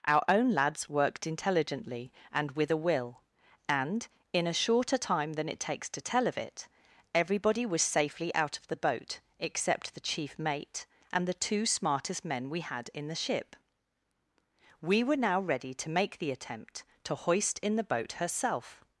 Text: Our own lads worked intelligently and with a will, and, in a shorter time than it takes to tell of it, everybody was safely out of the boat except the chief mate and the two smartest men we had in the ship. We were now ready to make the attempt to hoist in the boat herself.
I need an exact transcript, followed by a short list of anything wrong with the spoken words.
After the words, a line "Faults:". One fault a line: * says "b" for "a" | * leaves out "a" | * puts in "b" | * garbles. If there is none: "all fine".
Our own lads worked intelligently and with a will, and, in a shorter time than it takes to tell of it, everybody was safely out of the boat except the chief mate and the two smartest men we had in the ship. We were now ready to make the attempt to hoist in the boat herself.
Faults:
all fine